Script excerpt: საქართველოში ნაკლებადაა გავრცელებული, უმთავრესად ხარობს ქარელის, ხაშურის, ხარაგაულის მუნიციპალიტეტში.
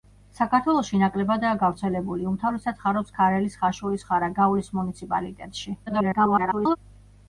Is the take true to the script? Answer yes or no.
no